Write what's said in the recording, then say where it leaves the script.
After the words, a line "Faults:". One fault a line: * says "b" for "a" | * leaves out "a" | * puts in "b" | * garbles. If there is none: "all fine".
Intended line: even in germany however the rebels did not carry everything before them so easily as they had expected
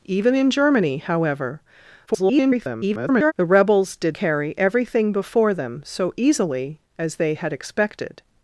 even in germany however [garbled] the rebels did carry everything before them so easily as they had expected
Faults:
* garbles
* leaves out "not"